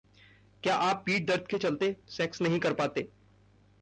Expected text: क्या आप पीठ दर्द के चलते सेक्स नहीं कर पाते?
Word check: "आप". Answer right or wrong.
right